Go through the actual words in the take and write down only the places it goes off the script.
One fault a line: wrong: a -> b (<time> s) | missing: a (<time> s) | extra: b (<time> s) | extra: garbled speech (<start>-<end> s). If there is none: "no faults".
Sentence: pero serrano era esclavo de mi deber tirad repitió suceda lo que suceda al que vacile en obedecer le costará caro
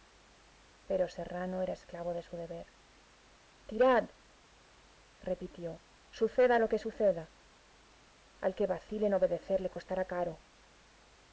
wrong: mi -> su (2.2 s)